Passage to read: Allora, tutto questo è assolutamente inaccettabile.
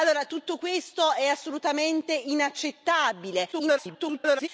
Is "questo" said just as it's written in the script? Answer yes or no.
yes